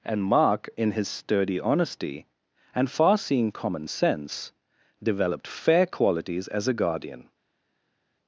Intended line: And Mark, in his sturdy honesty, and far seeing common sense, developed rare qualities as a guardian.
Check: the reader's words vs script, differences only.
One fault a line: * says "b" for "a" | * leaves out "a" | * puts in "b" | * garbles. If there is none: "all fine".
* says "fair" for "rare"